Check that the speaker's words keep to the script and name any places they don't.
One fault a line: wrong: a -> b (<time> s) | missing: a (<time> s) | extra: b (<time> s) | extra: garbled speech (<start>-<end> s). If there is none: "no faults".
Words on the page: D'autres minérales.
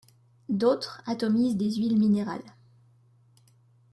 extra: atomisent des huiles (1.1 s)